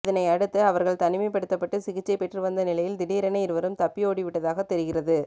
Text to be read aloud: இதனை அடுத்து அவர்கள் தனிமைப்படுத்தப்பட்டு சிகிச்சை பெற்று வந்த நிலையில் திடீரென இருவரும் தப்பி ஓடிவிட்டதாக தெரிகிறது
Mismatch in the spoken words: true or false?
false